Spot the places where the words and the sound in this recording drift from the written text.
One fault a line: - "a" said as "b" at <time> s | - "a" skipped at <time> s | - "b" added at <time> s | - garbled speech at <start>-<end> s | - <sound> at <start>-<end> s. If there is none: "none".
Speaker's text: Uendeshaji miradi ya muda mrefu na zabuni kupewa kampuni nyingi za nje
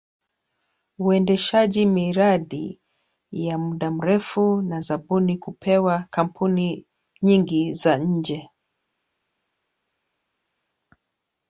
none